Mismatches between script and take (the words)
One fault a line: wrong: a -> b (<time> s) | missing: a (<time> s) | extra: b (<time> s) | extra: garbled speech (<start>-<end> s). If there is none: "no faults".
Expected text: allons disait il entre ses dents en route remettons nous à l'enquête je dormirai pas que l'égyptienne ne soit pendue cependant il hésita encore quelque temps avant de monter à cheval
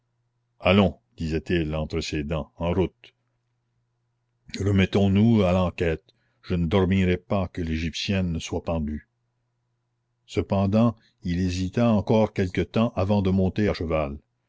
extra: ne (6.5 s)